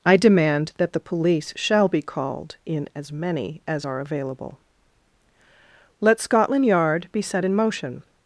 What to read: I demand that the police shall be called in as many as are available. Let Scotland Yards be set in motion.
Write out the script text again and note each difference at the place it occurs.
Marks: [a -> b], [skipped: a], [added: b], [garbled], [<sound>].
I demand that the police shall be called in as many as are available. Let Scotland [Yards -> Yard] be set in motion.